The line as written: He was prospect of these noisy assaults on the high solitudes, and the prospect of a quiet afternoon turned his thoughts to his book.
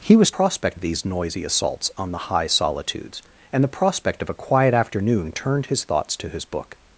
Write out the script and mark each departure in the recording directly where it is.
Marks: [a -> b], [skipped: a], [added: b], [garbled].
He was prospect of these noisy assaults on the high solitudes, and the prospect of a quiet afternoon turned his thoughts to his book.